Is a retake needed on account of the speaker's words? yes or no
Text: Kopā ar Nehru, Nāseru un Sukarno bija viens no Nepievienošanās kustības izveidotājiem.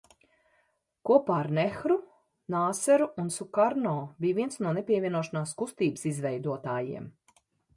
no